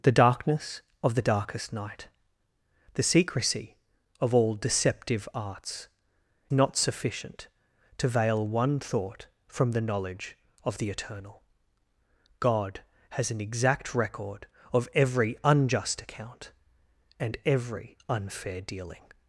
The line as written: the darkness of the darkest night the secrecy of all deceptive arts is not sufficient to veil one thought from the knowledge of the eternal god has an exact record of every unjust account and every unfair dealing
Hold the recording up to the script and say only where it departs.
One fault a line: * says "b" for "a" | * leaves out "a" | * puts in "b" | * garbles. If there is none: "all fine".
* leaves out "is"